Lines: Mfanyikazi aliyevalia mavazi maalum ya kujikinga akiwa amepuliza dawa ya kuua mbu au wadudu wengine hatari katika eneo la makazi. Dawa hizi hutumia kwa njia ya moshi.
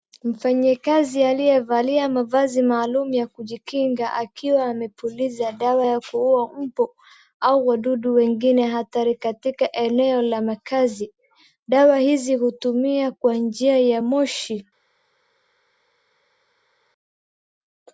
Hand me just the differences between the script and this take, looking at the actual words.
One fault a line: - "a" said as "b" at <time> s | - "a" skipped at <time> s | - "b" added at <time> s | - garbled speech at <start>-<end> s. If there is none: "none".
none